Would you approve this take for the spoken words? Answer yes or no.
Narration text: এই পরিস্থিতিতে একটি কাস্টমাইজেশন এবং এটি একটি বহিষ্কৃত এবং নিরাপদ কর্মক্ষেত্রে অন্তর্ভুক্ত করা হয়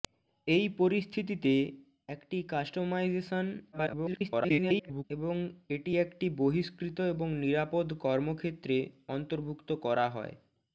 no